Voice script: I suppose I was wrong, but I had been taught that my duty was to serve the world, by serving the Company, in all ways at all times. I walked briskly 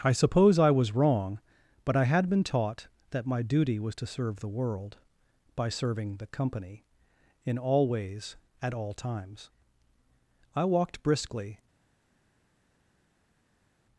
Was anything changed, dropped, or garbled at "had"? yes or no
no